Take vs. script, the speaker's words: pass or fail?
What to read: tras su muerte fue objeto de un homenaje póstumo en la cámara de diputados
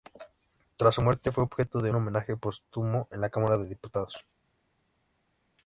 fail